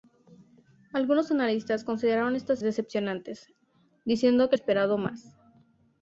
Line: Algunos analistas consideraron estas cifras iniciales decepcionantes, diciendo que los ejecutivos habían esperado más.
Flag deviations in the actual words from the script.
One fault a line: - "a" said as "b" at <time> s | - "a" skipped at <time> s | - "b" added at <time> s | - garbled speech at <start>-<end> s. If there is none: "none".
- "cifras iniciales" skipped at 2.6 s
- "los ejecutivos habían" skipped at 4.6 s